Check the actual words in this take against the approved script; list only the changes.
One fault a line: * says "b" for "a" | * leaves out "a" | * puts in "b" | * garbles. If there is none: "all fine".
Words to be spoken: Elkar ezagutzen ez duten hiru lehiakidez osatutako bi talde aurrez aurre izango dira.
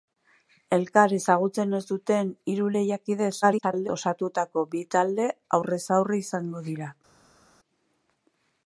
* garbles